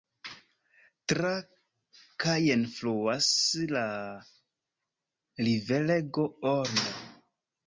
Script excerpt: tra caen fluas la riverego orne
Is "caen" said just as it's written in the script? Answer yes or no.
yes